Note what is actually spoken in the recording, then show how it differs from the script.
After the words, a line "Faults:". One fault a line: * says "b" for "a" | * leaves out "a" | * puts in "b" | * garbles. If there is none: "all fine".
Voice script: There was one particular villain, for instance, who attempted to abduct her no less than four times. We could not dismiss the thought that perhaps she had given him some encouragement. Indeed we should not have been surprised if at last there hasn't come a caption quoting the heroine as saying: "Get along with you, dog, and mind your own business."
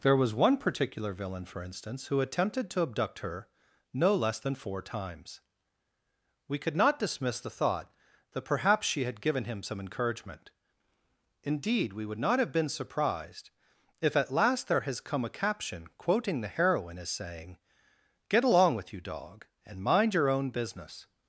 There was one particular villain, for instance, who attempted to abduct her no less than four times. We could not dismiss the thought that perhaps she had given him some encouragement. Indeed we would not have been surprised if at last there has come a caption quoting the heroine as saying: "Get along with you, dog, and mind your own business."
Faults:
* says "would" for "should"
* says "has" for "hasn't"